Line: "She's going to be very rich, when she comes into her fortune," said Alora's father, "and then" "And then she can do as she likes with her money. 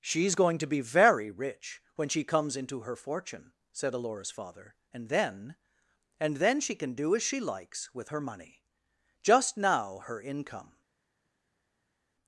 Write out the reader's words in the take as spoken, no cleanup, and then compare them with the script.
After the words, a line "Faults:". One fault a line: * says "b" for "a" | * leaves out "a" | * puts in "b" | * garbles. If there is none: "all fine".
"She's going to be very rich, when she comes into her fortune," said Alora's father, "and then" "And then she can do as she likes with her money. Just now her income
Faults:
* puts in "Just now her income"